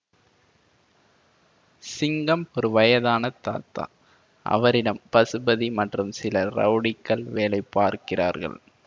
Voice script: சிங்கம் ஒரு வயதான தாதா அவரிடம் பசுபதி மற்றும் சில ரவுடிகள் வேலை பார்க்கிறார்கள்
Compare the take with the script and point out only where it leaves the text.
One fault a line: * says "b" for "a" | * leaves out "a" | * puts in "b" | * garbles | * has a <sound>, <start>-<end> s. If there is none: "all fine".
all fine